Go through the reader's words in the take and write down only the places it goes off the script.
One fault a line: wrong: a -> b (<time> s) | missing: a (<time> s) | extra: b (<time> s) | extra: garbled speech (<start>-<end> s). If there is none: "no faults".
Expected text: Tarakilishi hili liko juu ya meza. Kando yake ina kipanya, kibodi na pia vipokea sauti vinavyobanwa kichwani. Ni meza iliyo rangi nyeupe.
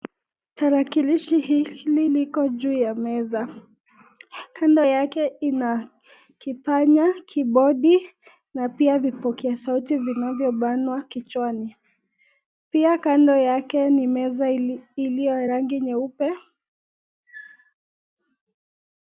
extra: Pia kando yake (12.7 s)